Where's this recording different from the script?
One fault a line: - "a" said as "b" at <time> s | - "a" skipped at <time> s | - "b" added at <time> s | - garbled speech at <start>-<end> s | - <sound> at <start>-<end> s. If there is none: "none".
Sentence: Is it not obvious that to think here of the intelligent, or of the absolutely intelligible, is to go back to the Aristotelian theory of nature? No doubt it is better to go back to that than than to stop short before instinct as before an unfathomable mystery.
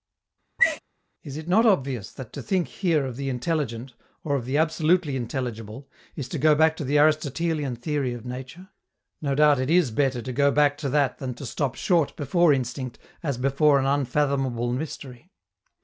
- sneeze at 0.6-0.8 s
- "than" skipped at 11.3 s